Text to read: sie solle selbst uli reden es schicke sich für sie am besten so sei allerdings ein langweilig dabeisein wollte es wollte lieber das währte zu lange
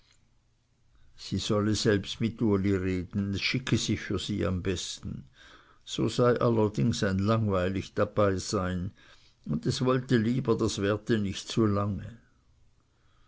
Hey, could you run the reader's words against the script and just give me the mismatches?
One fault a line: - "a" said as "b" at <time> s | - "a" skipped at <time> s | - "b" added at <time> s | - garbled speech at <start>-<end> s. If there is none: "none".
- "mit" added at 2.2 s
- "wollte" said as "und" at 9.4 s
- "nicht" added at 11.2 s